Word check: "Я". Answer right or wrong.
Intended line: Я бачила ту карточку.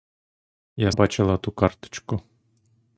right